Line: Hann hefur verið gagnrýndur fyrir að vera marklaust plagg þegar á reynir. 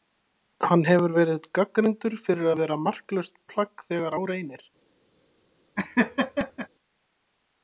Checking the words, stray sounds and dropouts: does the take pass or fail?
fail